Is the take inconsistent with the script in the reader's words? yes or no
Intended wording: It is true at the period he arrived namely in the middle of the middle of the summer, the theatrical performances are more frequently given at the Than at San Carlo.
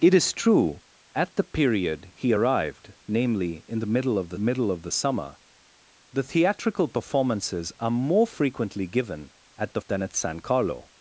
no